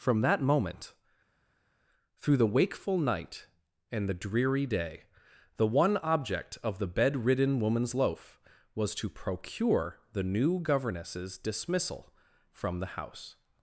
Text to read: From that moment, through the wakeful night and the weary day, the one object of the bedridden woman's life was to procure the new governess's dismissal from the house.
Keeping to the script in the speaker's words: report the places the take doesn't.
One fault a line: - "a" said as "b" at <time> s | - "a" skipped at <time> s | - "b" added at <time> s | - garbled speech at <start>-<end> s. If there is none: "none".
- "weary" said as "dreary" at 4.1 s
- "life" said as "loaf" at 7.9 s